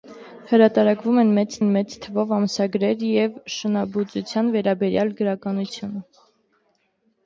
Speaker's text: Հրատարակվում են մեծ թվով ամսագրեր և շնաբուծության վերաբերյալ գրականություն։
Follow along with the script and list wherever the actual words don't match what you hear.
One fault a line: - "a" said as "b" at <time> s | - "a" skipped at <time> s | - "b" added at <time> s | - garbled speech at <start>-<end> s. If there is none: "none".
- "են մեծ" added at 1.6 s